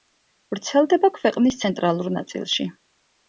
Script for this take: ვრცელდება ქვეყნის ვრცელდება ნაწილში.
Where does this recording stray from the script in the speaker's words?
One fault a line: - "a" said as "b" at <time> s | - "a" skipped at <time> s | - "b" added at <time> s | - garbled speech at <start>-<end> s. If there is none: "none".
- "ვრცელდება" said as "ცენტრალურ" at 1.6 s